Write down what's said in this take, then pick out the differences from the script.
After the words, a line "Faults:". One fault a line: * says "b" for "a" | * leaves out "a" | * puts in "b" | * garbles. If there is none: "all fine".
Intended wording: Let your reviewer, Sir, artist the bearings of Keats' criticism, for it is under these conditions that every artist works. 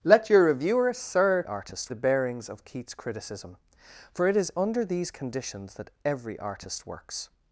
Let your reviewer, Sir, artist the bearings of Keats' criticism, for it is under these conditions that every artist works.
Faults:
all fine